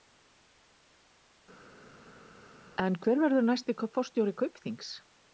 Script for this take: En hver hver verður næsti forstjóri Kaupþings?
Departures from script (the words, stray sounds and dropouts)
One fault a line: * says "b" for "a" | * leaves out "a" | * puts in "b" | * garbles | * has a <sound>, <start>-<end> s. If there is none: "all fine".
* leaves out "hver"